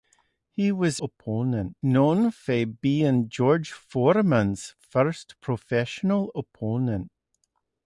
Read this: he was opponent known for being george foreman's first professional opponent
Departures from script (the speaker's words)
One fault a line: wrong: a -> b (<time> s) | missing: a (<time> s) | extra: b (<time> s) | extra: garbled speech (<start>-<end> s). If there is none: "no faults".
no faults